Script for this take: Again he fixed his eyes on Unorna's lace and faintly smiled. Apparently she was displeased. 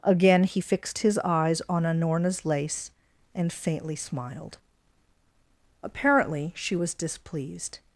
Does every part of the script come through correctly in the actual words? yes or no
yes